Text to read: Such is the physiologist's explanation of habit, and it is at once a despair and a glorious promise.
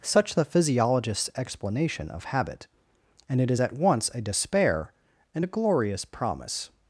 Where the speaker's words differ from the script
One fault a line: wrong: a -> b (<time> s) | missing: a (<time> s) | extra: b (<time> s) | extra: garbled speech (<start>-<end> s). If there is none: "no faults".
missing: is (0.3 s)